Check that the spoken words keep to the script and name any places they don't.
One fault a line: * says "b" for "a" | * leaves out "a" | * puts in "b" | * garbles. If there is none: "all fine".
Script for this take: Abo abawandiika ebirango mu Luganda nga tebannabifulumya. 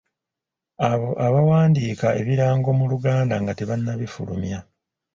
all fine